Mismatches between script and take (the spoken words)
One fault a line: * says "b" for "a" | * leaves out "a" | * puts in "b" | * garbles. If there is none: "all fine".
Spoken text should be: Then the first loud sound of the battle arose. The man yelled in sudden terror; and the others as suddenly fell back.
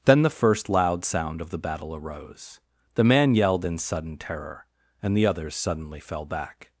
* leaves out "as"